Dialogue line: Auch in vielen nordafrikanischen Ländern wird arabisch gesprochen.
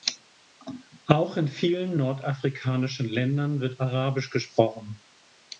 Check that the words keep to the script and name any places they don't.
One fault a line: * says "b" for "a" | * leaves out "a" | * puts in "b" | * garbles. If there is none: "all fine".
all fine